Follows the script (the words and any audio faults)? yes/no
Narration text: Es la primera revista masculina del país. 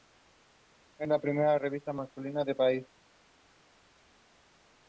yes